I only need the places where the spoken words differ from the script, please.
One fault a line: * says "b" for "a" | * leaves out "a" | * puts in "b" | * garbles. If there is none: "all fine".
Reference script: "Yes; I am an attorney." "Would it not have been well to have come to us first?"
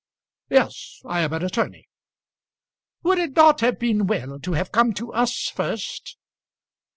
all fine